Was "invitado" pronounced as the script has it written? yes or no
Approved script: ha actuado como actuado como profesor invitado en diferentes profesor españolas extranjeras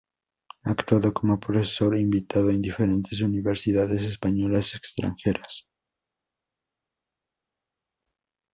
yes